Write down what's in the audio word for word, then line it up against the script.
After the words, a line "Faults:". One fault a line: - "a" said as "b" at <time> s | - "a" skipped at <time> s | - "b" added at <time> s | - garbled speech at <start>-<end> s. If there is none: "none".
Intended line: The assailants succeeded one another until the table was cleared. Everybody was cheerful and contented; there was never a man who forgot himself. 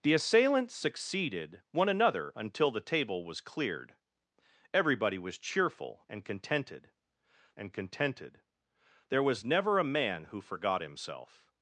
The assailants succeeded one another until the table was cleared. Everybody was cheerful and contented and contented; there was never a man who forgot himself.
Faults:
- "and contented" added at 7.6 s